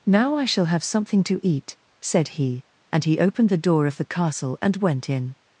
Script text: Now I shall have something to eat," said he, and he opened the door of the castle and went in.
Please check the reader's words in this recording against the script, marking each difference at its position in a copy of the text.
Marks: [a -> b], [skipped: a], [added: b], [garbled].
Now I shall have something to eat," said he, and he opened the door of the castle and went in.